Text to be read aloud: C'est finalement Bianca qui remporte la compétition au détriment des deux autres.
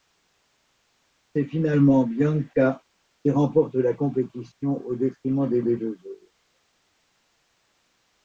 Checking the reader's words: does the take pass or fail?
fail